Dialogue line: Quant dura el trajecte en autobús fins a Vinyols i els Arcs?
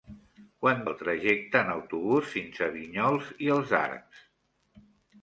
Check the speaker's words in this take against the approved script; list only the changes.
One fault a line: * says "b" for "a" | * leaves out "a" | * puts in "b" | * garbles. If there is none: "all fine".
* leaves out "dura"